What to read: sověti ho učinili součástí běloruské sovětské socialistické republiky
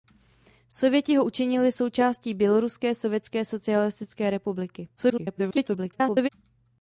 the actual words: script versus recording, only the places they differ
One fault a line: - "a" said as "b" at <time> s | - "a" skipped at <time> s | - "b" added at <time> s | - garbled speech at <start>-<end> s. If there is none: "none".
- garbled speech at 5.0-6.3 s